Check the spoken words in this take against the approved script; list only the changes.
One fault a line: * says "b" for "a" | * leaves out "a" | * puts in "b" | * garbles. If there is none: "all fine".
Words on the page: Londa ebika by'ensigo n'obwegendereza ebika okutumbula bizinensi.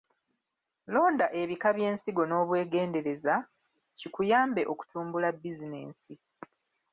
* says "kikuyambe" for "ebika"